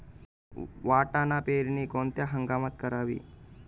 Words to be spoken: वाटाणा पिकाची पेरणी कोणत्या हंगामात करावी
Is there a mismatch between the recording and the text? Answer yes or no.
yes